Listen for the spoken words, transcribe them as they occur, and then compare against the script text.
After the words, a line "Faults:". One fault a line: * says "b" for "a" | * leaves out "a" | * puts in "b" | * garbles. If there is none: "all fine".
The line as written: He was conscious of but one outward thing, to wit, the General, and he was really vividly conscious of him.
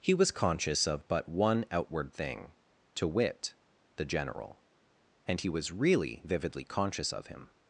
He was conscious of but one outward thing, to wit, the General, and he was really vividly conscious of him.
Faults:
all fine